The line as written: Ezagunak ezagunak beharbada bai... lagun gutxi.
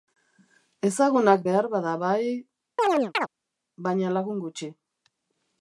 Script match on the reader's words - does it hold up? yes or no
no